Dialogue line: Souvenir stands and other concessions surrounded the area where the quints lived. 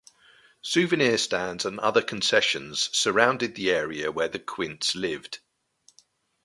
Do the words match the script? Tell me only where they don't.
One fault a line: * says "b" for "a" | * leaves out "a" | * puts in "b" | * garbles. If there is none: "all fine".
all fine